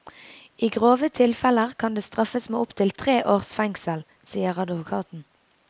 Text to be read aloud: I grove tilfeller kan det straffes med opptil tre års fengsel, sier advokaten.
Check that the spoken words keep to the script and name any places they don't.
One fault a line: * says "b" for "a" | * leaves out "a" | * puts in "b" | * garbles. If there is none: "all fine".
all fine